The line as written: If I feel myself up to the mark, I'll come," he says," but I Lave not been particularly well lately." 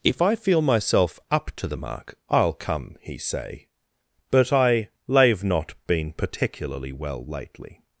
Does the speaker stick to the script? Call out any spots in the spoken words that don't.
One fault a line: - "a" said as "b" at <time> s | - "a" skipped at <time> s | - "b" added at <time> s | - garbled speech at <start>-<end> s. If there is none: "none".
- "says" said as "say" at 3.2 s